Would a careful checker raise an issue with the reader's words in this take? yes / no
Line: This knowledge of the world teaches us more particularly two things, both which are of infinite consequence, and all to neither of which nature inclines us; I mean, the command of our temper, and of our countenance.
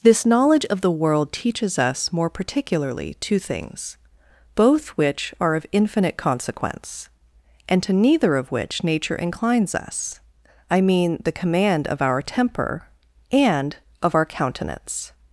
yes